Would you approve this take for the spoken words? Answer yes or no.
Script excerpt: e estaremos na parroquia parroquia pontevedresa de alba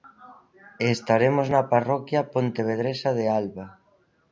no